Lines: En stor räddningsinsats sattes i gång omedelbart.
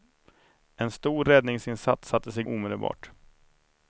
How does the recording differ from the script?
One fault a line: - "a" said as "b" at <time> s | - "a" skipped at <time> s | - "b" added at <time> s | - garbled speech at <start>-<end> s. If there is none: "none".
- "gång" skipped at 2.4 s